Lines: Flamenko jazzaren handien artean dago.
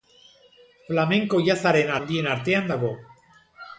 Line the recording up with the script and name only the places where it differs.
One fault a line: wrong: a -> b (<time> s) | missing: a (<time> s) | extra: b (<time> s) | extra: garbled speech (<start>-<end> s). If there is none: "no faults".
no faults